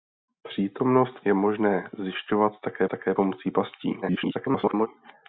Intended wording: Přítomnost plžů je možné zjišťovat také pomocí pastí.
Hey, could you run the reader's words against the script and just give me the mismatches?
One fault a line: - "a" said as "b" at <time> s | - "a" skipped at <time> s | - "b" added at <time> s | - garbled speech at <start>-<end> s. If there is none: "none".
- "plžů" skipped at 1.2 s
- "také" added at 2.9 s
- garbled speech at 4.0-4.9 s